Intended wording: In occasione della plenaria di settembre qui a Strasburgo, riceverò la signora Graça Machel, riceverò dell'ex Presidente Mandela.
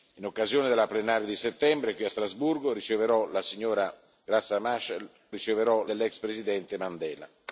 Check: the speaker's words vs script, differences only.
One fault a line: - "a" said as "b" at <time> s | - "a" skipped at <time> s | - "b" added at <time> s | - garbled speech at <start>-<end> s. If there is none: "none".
none